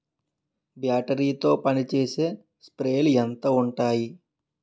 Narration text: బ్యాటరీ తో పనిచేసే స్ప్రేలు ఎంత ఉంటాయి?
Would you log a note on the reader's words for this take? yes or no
no